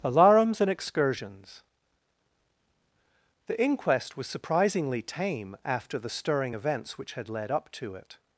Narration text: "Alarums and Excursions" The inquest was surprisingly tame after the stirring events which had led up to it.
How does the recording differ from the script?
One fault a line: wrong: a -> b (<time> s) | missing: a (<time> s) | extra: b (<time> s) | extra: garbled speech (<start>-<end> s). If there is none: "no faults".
no faults